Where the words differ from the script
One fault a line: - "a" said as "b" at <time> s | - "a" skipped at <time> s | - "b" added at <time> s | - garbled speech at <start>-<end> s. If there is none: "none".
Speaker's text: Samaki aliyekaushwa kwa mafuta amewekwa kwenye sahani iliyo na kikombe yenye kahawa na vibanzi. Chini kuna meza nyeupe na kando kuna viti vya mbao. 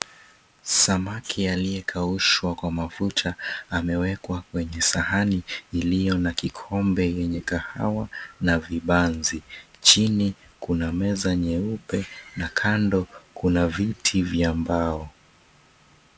none